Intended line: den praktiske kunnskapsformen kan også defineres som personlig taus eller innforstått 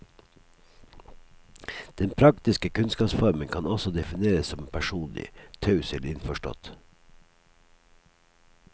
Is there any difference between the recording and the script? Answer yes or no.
no